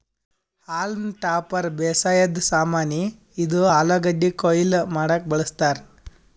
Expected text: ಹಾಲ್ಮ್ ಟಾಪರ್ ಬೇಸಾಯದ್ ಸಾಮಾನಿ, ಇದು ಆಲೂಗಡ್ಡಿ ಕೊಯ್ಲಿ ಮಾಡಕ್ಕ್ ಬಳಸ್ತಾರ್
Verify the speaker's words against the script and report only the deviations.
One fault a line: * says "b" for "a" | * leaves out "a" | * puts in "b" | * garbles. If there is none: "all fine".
all fine